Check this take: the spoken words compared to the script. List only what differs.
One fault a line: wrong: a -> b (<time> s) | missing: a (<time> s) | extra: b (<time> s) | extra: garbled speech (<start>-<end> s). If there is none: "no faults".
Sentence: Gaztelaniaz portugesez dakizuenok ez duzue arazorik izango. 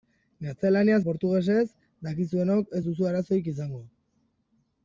no faults